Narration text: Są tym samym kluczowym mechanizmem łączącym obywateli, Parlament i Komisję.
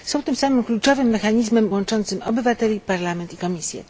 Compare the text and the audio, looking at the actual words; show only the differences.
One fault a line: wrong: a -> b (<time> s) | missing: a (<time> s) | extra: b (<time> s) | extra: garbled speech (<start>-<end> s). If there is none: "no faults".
no faults